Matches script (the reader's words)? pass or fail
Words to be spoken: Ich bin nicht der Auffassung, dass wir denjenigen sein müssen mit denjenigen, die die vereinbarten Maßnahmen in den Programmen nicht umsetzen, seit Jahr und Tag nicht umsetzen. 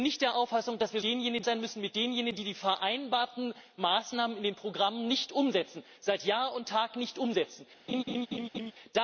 pass